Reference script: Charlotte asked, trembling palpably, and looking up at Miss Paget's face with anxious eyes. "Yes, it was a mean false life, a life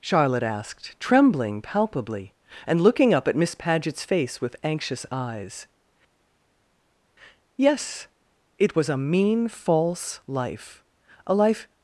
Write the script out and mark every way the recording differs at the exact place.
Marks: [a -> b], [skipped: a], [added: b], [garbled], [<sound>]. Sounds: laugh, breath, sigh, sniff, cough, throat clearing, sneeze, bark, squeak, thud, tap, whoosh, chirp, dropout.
Charlotte asked, trembling palpably, and looking up at Miss Paget's face with anxious eyes. "Yes, it was a mean false life, a life